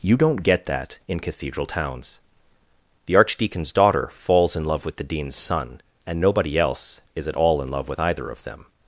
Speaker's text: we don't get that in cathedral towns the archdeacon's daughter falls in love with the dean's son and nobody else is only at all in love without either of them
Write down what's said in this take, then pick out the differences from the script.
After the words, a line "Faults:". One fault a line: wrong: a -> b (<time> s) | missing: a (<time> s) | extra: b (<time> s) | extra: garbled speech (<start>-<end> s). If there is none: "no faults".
you don't get that in cathedral towns the archdeacon's daughter falls in love with the dean's son and nobody else is at all in love with either of them
Faults:
wrong: we -> you (0.0 s)
missing: only (7.3 s)
wrong: without -> with (7.9 s)